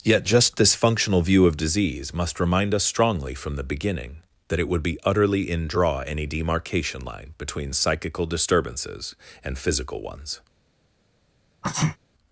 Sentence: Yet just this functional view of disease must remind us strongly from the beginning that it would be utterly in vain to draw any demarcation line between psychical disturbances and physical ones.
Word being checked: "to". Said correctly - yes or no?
no